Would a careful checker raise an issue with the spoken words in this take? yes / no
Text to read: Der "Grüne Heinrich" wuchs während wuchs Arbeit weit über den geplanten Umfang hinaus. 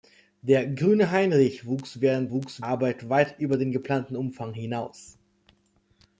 no